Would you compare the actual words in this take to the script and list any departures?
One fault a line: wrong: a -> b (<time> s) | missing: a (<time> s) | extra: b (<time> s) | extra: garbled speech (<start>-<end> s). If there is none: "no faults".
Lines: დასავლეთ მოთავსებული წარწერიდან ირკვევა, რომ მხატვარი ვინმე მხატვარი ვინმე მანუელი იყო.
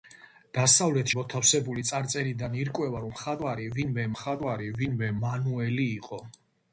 no faults